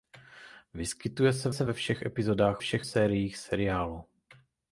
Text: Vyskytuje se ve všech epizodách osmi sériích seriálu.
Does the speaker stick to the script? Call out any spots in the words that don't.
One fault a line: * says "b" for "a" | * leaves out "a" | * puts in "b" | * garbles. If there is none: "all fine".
* puts in "se"
* says "všech" for "osmi"